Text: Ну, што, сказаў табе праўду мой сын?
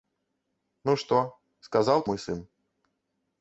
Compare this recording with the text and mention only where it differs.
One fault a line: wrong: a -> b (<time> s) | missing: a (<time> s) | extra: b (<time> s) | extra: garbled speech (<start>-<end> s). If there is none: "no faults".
missing: табе праўду (2.0 s)